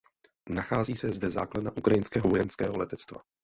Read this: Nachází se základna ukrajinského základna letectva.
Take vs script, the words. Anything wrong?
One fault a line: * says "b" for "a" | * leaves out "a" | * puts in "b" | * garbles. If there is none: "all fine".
* puts in "zde"
* says "vojenského" for "základna"